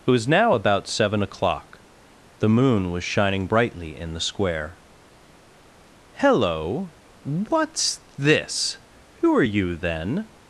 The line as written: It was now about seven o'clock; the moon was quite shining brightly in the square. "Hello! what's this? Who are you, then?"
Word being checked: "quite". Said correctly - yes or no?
no